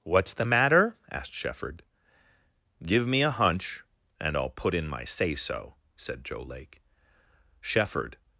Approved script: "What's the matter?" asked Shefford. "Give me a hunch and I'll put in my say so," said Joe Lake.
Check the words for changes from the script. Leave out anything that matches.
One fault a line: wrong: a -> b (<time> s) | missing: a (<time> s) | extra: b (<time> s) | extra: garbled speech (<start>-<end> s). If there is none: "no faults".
extra: Shefford (7.6 s)